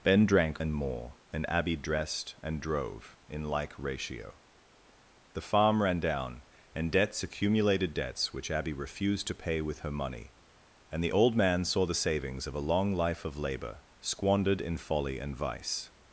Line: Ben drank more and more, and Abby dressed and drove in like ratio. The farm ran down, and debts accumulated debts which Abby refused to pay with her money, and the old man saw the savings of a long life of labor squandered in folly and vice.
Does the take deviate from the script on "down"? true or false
false